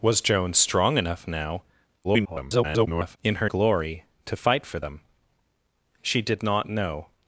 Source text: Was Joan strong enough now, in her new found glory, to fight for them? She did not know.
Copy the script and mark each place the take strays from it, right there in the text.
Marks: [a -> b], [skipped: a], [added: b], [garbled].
Was Joan strong enough now, [garbled] in her [skipped: new found] glory, to fight for them? She did not know.